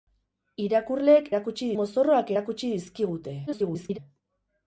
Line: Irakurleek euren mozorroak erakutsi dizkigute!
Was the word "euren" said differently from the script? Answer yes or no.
yes